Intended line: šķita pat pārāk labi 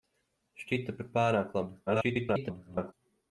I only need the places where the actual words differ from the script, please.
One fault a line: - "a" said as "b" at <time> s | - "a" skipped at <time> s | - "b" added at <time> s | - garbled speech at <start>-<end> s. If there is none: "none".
- garbled speech at 1.9-2.9 s